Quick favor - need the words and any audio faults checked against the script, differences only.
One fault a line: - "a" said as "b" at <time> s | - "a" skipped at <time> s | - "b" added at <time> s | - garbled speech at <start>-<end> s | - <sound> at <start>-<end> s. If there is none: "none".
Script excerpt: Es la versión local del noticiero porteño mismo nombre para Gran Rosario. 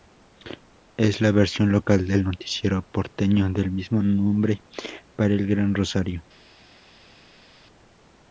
- "del" added at 3.5 s
- "el" added at 5.3 s